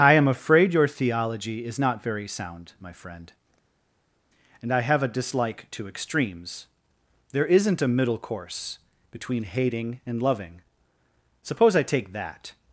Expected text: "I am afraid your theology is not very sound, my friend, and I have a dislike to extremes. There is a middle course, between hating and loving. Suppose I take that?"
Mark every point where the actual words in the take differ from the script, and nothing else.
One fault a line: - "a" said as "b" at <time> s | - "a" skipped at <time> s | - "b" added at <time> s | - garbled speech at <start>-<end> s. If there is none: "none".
- "is" said as "isn't" at 7.5 s